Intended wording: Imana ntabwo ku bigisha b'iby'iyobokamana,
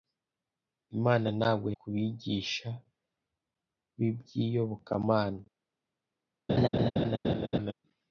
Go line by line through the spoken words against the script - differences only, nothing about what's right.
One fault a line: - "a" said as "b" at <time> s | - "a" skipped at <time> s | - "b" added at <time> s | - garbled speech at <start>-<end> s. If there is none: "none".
none